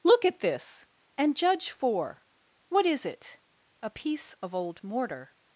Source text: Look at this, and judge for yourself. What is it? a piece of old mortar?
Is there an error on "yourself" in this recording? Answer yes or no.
yes